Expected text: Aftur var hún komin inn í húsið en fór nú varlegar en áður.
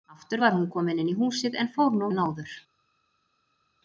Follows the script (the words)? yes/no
no